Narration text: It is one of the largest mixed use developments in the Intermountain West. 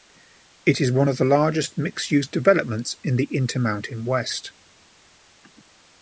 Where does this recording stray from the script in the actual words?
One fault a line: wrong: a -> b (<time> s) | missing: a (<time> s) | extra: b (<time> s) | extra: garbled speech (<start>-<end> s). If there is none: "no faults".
no faults